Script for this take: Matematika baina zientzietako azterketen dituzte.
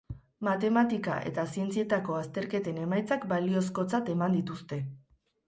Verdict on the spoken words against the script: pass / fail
fail